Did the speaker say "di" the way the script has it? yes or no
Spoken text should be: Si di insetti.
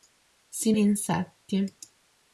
yes